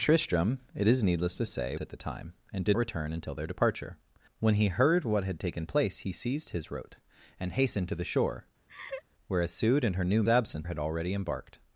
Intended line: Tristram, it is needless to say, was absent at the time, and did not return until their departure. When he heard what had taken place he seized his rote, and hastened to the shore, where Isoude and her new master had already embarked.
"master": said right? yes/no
no